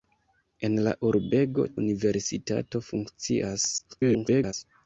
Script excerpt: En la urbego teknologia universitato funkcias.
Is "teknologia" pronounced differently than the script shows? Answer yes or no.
yes